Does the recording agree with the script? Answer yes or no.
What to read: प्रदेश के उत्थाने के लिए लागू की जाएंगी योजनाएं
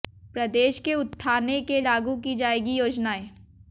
no